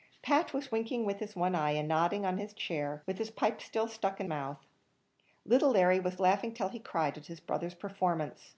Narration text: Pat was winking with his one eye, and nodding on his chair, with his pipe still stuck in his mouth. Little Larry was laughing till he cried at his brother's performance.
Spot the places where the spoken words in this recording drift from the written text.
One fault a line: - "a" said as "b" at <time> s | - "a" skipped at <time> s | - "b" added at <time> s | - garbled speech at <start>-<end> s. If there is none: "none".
- "his" skipped at 4.3 s